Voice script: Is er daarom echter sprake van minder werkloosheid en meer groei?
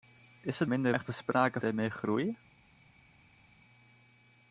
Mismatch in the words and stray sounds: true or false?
true